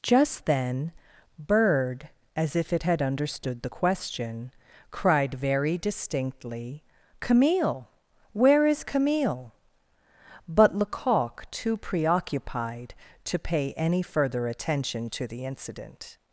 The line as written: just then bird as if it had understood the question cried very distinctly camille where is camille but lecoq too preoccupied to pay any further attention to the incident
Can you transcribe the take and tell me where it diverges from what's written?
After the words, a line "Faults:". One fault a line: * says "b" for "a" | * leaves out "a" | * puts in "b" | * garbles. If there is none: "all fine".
just then bird as if it had understood the question cried very distinctly camille where is camille but lecoq too preoccupied to pay any further attention to the incident
Faults:
all fine